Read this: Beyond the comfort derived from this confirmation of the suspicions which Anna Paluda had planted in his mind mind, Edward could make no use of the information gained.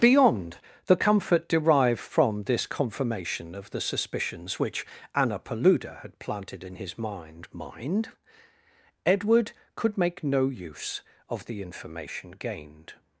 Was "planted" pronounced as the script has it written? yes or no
yes